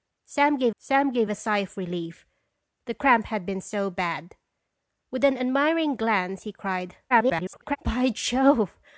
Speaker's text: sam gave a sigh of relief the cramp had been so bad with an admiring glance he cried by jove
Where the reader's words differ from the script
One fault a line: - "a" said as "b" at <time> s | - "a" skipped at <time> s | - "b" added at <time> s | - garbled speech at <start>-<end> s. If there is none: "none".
- "sam gave" added at 0.8 s
- garbled speech at 7.1-7.8 s